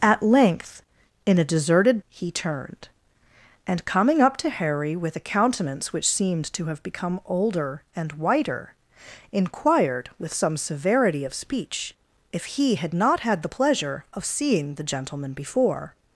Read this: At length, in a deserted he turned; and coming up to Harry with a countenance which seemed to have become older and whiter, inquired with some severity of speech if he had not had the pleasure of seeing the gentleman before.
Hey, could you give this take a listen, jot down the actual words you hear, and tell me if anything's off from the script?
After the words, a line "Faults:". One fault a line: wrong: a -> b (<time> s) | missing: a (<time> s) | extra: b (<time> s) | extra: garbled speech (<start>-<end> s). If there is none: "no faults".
At length, in a deserted he turned; and coming up to Harry with a countenance which seemed to have become older and whiter, inquired with some severity of speech if he had not had the pleasure of seeing the gentleman before.
Faults:
no faults